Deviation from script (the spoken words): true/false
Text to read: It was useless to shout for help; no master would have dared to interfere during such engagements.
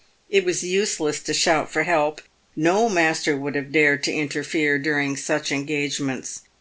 false